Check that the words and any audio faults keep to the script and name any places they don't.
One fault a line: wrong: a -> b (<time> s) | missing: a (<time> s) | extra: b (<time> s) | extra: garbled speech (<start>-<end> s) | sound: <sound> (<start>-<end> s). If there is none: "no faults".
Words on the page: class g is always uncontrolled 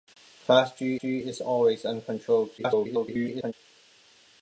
extra: g (1.0 s)
extra: garbled speech (2.6-3.5 s)